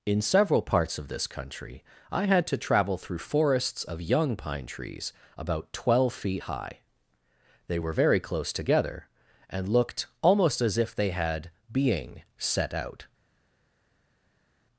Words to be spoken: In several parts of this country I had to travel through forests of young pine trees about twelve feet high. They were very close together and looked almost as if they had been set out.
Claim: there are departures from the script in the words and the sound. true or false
true